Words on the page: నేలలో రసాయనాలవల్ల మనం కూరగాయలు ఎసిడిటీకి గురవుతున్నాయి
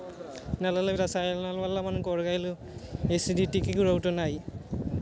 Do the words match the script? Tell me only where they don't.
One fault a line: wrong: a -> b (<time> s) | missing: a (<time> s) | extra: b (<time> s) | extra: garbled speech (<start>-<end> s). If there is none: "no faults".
no faults